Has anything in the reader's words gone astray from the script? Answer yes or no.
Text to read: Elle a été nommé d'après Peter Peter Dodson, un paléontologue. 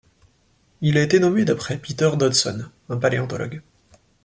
yes